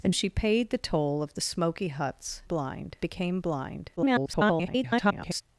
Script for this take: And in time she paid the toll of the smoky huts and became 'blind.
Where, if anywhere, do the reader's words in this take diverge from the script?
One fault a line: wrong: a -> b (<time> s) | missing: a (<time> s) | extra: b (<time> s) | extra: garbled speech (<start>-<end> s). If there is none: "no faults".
missing: in time (0.1 s)
wrong: and -> blind (2.4 s)
extra: garbled speech (4.0-5.4 s)